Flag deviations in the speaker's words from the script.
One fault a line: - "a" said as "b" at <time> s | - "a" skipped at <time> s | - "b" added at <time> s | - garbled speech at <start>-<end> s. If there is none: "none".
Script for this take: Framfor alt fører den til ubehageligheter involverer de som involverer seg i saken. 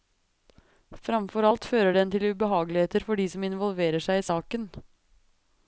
- "involverer" said as "for" at 3.1 s